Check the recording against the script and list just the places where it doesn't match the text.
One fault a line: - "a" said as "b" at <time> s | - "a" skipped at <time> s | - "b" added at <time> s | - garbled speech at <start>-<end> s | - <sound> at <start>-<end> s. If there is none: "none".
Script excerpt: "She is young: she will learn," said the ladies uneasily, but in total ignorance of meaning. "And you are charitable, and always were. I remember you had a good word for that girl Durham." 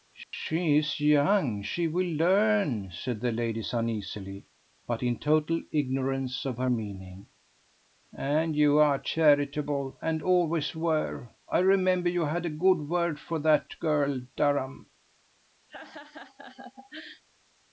- dropout at 0.2-0.3 s
- "her" added at 6.6 s
- laugh at 15.7-17.2 s